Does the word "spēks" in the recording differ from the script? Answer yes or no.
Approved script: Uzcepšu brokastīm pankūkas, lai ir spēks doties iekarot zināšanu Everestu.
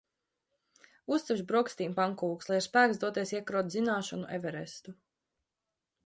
no